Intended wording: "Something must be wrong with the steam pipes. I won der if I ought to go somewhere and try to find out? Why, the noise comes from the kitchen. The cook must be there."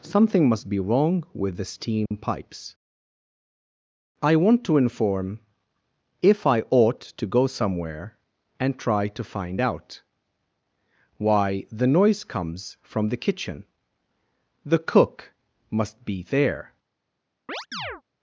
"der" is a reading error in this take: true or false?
true